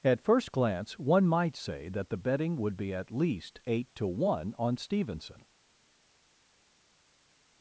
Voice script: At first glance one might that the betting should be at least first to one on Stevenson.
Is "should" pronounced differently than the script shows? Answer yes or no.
yes